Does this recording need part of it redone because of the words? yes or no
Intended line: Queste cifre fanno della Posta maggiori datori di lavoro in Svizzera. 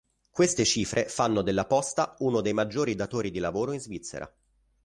yes